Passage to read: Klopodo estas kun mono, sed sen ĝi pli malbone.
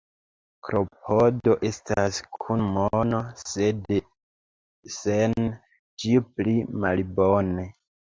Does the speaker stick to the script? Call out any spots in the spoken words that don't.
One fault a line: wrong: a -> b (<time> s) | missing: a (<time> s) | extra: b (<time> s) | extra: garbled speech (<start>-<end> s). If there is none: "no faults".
no faults